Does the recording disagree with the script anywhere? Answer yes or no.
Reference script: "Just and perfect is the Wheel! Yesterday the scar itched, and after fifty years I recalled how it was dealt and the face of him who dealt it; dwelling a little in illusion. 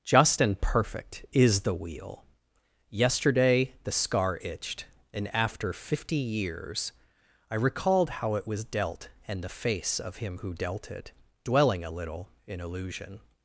no